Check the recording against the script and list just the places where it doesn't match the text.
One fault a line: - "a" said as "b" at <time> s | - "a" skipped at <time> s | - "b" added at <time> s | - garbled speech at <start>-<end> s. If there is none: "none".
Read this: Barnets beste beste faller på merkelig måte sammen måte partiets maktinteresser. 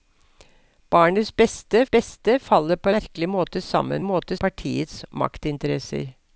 none